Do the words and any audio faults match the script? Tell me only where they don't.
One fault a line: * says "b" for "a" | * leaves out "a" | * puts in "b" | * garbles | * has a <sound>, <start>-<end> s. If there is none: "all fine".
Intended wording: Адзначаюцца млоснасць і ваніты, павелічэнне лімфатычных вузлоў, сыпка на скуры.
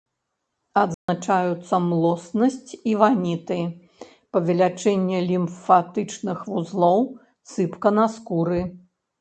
* has a dropout, 0.9-1.1 s